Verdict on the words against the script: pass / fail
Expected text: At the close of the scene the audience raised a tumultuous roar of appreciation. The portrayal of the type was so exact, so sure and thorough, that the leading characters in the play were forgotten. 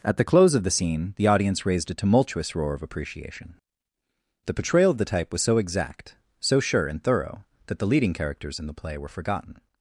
pass